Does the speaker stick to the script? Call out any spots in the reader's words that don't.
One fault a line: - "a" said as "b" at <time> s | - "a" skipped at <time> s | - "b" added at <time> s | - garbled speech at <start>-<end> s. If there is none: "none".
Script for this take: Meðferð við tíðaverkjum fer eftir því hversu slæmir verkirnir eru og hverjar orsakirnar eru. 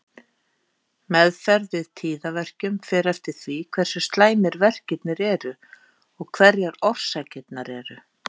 none